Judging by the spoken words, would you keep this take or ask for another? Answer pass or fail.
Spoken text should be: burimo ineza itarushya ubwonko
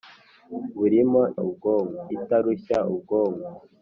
fail